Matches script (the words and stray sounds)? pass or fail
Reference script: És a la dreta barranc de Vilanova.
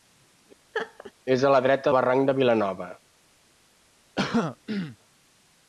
fail